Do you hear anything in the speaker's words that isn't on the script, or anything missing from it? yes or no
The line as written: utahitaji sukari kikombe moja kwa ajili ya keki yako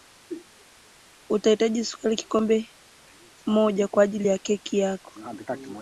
no